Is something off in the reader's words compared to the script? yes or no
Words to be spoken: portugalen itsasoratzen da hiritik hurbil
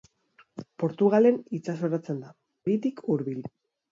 no